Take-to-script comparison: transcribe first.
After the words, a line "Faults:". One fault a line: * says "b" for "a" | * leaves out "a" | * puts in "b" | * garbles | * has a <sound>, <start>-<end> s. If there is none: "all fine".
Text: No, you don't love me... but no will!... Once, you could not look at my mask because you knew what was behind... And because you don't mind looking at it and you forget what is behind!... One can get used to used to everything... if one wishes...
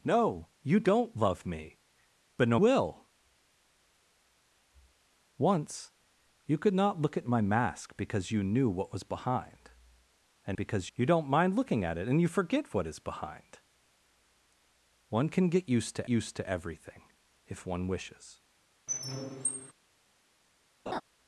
No, you don't love me... but no will!... Once, you could not look at my mask because you knew what was behind... And because you don't mind looking at it and you forget what is behind!... One can get used to used to everything... if one wishes...
Faults:
* has a squeak, 18.9-19.7 s
* has a laugh, 20.9-21.0 s